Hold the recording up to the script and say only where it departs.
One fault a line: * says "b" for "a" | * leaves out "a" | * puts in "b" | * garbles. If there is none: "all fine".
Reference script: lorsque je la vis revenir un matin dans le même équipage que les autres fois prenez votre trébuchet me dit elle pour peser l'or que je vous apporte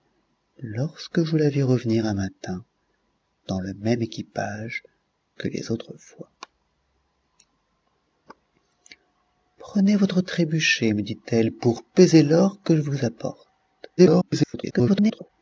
* garbles